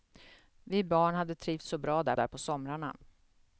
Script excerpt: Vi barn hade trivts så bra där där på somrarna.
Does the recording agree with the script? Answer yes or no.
yes